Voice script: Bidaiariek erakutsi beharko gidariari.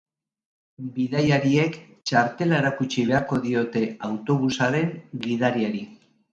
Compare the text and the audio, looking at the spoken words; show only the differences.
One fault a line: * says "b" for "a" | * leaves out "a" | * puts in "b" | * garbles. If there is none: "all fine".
* puts in "txartela"
* puts in "diote autobusaren"